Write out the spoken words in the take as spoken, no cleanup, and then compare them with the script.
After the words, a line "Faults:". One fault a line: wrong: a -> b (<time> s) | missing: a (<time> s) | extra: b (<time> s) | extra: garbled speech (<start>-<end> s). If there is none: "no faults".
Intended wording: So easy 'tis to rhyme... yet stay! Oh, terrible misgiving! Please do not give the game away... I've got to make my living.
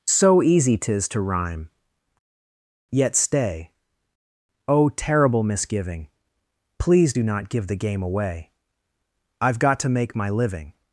So easy 'tis to rhyme... yet stay! Oh, terrible misgiving! Please do not give the game away... I've got to make my living.
Faults:
no faults